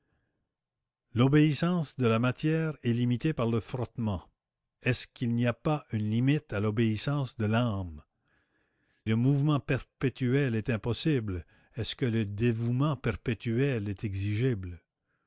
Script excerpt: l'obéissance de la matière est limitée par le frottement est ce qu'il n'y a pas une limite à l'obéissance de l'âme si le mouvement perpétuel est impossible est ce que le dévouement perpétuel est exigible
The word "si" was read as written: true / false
false